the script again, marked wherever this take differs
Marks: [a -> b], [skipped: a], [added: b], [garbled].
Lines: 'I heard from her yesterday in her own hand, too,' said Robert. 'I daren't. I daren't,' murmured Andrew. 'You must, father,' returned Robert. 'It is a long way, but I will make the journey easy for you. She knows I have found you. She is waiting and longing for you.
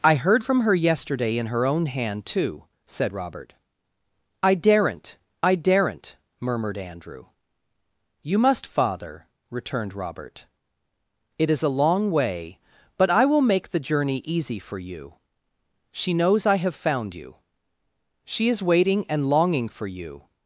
'I heard from her yesterday in her own hand, too,' said Robert. 'I daren't. I daren't,' murmured Andrew. 'You must, father,' returned Robert. 'It is a long way, but I will make the journey easy for you. She knows I have found you. She is waiting and longing for you.